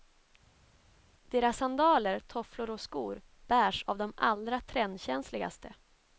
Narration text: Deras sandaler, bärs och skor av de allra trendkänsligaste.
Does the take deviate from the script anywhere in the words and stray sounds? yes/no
yes